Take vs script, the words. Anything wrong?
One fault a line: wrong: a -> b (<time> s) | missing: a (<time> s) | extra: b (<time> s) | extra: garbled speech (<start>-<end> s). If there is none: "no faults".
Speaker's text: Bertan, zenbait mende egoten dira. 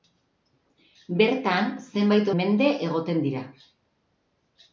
no faults